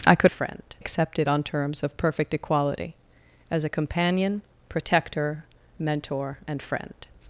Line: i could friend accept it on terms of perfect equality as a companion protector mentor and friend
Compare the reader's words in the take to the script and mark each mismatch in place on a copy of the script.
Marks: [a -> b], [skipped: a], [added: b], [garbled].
i could friend accept it on terms of perfect equality as a companion protector mentor and friend